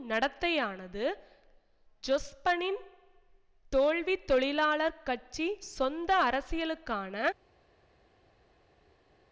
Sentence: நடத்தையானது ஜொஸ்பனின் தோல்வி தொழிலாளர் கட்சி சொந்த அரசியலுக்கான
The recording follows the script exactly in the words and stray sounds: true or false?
true